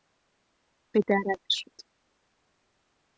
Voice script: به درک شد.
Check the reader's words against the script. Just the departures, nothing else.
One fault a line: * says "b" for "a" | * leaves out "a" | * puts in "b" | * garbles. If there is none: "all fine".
all fine